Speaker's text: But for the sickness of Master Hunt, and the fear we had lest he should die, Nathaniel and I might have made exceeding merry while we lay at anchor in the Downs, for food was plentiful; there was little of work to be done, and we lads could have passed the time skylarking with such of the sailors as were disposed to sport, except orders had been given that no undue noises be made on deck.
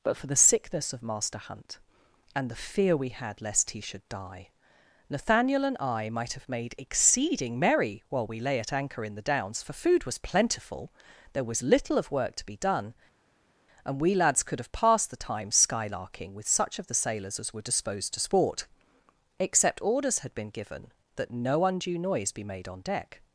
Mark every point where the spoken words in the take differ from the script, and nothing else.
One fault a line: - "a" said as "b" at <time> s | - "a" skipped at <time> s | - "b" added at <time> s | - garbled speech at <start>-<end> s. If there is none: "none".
- "noises" said as "noise" at 22.0 s